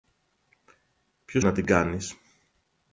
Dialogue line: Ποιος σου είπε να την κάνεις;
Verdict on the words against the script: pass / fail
fail